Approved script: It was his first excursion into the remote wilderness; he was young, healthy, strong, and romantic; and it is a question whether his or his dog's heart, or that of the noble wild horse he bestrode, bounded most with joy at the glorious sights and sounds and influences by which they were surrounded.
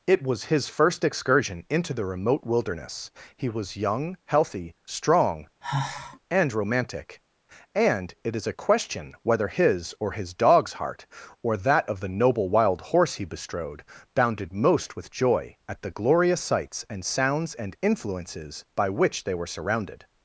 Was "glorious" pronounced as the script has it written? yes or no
yes